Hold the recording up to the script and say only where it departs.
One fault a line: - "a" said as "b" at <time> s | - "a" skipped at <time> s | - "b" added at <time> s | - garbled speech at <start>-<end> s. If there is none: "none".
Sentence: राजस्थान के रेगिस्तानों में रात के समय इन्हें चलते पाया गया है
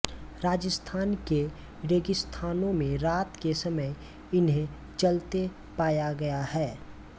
none